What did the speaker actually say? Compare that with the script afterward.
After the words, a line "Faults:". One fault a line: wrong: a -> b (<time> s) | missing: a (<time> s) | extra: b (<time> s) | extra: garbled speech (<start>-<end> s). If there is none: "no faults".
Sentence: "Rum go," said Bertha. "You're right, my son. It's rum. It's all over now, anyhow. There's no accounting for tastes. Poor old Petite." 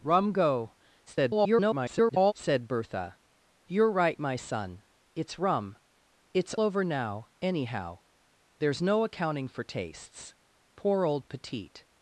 "Rum go," [garbled] said Bertha. "You're right, my son. It's rum. It's over now, anyhow. There's no accounting for tastes. Poor old Petite."
Faults:
extra: garbled speech (1.1-2.3 s)
missing: all (6.5 s)